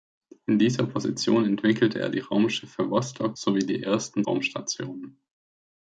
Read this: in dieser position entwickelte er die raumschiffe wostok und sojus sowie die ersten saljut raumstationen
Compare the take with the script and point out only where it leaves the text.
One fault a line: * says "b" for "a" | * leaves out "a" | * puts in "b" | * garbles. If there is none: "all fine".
* leaves out "und sojus"
* leaves out "saljut"